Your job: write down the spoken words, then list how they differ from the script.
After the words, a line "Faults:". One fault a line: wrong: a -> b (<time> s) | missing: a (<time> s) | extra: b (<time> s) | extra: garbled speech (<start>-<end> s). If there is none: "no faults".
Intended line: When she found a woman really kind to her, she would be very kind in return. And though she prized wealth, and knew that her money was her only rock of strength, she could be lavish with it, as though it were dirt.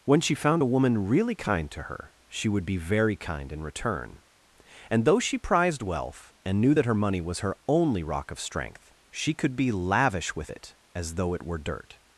When she found a woman really kind to her, she would be very kind in return. And though she prized wealth, and knew that her money was her only rock of strength, she could be lavish with it, as though it were dirt.
Faults:
no faults